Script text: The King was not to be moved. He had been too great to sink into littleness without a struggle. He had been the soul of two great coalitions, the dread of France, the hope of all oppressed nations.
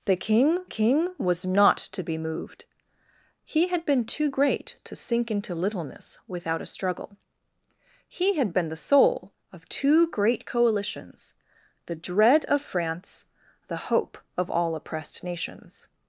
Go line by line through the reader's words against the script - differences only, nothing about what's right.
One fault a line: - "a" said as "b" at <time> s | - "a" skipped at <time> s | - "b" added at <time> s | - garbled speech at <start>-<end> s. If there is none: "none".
- "King" added at 0.6 s